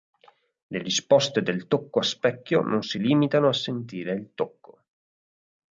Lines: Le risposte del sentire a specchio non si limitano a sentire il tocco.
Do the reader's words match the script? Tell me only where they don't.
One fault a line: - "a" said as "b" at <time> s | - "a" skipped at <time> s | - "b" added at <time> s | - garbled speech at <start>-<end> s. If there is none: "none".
- "sentire" said as "tocco" at 1.7 s